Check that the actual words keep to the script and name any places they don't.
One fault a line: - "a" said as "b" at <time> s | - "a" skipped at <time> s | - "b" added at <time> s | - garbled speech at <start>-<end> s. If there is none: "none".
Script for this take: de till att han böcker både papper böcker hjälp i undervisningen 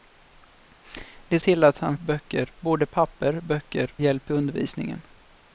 none